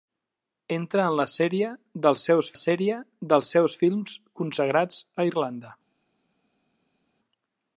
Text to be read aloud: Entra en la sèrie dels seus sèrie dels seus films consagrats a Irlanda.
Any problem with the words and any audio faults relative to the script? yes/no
no